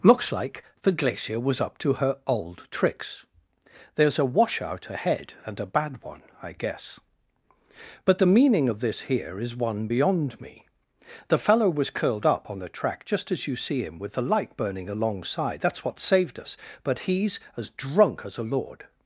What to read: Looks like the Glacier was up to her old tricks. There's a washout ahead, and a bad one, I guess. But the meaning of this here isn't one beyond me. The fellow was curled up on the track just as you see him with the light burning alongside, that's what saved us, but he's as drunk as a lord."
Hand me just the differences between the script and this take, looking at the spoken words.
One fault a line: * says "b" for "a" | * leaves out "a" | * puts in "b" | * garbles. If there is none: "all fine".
* says "is" for "isn't"